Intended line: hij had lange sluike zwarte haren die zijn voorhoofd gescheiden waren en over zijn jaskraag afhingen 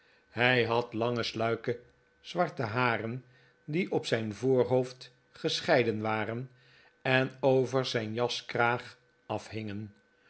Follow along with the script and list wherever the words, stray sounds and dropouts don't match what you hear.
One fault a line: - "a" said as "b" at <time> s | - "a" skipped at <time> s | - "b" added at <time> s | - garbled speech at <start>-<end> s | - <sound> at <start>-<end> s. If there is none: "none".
- "op" added at 3.9 s